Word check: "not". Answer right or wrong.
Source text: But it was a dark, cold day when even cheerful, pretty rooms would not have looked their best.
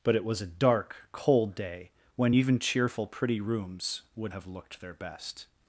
wrong